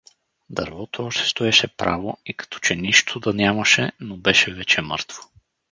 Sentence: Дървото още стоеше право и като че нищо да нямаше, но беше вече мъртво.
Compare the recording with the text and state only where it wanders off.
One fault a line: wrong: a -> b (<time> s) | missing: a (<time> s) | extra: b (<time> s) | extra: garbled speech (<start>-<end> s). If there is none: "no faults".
no faults